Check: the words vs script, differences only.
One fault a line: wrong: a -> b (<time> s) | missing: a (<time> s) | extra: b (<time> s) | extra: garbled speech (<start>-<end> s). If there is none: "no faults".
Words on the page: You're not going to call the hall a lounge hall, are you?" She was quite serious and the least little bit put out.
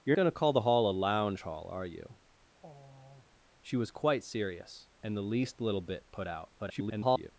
missing: not (0.2 s)
extra: garbled speech (6.6-7.3 s)